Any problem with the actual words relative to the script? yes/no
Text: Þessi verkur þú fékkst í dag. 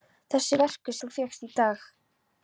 no